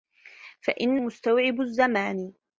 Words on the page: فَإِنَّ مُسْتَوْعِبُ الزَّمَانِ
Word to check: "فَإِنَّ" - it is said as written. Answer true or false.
true